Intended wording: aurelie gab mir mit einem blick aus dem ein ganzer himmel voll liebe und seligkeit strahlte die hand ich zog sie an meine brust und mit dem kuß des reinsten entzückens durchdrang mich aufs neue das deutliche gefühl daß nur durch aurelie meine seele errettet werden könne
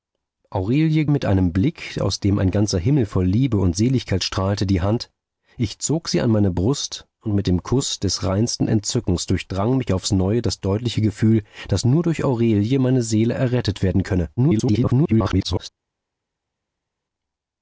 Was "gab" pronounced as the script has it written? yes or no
no